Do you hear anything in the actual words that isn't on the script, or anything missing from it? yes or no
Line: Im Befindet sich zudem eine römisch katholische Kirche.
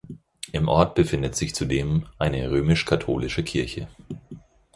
yes